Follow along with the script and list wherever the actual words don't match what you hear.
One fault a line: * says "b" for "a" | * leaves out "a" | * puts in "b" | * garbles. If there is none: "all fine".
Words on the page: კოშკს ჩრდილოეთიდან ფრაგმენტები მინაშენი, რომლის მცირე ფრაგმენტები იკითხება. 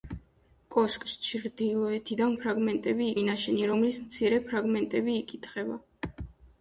all fine